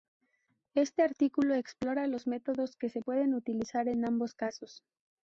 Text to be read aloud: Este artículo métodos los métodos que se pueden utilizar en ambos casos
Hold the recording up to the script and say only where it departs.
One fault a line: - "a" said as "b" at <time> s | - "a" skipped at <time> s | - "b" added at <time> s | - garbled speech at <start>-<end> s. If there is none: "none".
- "métodos" said as "explora" at 1.5 s